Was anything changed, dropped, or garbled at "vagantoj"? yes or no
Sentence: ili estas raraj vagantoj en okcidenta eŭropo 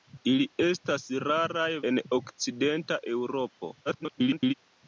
yes